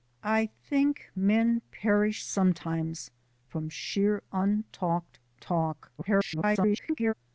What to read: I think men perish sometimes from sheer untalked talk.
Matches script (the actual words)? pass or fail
fail